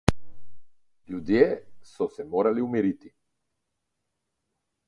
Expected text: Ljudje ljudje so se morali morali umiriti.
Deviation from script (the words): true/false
true